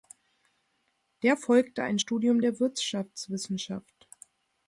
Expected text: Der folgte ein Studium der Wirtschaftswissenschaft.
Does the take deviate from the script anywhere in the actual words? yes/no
no